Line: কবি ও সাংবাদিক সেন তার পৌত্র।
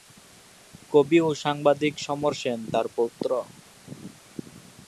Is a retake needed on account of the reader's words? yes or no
yes